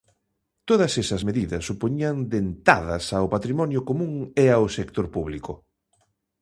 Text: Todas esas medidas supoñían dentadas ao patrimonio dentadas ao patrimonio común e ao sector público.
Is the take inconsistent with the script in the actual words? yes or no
yes